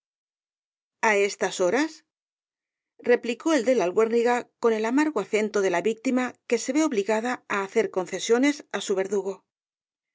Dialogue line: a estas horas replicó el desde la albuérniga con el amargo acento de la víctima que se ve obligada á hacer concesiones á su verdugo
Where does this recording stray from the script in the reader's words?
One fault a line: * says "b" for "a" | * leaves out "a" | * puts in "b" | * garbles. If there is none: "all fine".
* says "de" for "desde"